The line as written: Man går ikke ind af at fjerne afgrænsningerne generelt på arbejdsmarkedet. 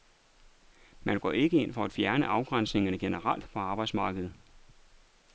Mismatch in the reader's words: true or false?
true